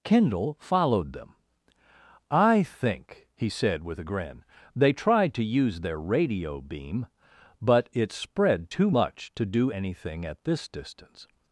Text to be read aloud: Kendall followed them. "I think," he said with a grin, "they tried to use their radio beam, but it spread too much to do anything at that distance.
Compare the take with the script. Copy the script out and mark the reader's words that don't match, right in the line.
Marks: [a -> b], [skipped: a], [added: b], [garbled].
Kendall followed them. "I think," he said with a grin, "they tried to use their radio beam, but it spread too much to do anything at [that -> this] distance.